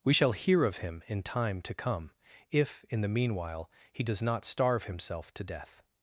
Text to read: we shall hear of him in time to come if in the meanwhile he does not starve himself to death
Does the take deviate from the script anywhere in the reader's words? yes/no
no